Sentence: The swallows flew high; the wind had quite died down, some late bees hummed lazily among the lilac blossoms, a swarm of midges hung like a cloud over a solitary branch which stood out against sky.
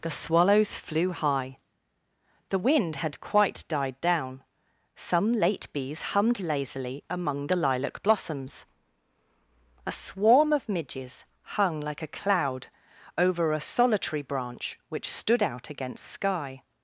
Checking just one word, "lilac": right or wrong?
right